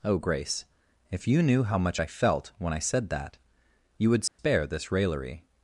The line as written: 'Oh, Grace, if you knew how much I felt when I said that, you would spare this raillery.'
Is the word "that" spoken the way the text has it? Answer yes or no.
yes